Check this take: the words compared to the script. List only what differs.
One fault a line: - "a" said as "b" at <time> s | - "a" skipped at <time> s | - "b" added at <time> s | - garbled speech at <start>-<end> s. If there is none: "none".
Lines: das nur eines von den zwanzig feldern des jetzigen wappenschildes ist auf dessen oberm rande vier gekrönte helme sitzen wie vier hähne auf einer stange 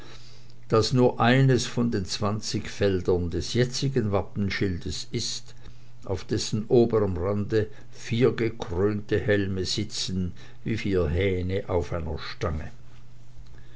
none